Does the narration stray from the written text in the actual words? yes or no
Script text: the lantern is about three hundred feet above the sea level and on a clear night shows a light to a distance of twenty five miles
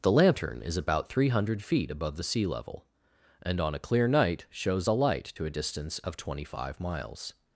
no